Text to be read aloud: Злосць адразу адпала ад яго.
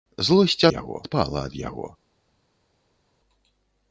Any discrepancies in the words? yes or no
yes